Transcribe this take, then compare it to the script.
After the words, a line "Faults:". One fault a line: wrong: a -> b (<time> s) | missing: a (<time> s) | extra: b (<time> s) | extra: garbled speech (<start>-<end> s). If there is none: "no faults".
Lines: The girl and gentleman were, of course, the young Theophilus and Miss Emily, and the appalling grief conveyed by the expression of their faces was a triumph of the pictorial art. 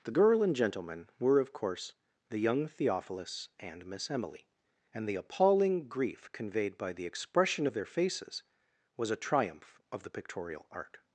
The girl and gentleman were, of course, the young Theophilus and Miss Emily, and the appalling grief conveyed by the expression of their faces was a triumph of the pictorial art.
Faults:
no faults